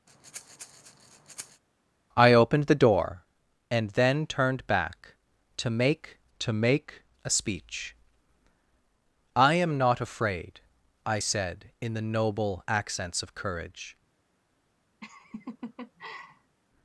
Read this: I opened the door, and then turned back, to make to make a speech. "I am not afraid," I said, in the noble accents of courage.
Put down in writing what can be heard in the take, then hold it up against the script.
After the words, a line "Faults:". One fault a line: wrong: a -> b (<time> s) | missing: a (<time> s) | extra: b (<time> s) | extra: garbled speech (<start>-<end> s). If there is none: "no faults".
I opened the door, and then turned back, to make to make a speech. "I am not afraid," I said, in the noble accents of courage.
Faults:
no faults